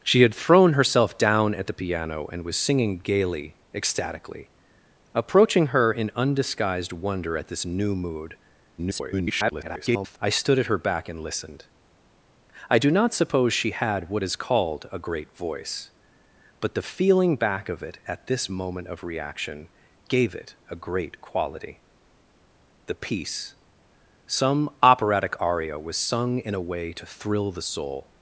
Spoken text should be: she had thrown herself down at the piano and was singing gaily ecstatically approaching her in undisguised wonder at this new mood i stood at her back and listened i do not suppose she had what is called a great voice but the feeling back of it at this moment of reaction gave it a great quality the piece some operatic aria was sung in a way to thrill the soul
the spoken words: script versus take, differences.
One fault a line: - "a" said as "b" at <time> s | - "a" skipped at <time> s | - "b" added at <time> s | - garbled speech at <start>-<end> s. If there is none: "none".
- garbled speech at 8.8-10.2 s